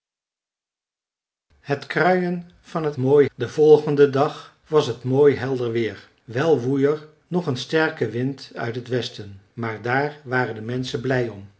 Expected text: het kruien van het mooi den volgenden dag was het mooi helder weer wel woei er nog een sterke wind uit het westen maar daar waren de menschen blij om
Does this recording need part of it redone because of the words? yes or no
no